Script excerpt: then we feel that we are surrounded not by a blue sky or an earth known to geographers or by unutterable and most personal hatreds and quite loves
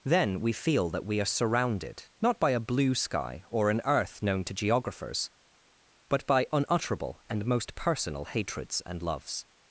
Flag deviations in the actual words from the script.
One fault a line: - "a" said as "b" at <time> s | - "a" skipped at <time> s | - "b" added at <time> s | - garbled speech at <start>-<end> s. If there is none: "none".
- "or" said as "but" at 6.1 s
- "quite" skipped at 9.0 s